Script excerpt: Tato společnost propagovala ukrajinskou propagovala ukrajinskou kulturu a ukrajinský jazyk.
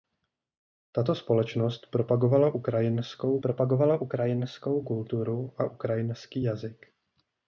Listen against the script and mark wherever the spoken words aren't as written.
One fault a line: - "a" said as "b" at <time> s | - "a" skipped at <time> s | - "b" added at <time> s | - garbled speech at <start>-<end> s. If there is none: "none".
none